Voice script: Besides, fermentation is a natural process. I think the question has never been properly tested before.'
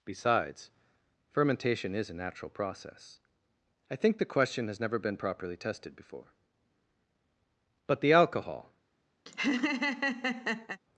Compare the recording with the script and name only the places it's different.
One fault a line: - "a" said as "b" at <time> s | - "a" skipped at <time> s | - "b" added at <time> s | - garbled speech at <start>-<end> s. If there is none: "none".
- "But the alcohol" added at 7.8 s